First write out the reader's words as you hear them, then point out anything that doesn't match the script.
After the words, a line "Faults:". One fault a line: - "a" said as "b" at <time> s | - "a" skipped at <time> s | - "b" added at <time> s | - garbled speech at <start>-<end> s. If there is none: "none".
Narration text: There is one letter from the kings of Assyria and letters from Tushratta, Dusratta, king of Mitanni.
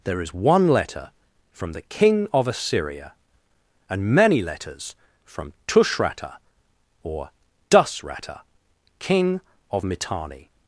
There is one letter from the king of Assyria and many letters from Tushratta, or Dusratta, king of Mitanni.
Faults:
- "kings" said as "king" at 1.8 s
- "many" added at 4.0 s
- "or" added at 7.0 s